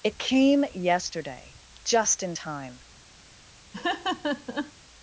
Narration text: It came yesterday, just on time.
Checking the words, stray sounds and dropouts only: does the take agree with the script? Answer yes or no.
no